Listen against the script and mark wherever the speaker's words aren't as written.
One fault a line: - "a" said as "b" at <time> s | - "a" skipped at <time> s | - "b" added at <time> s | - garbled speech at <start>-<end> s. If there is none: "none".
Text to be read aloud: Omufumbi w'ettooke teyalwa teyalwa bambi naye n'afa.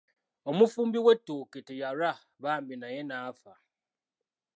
- "teyalwa" skipped at 2.1 s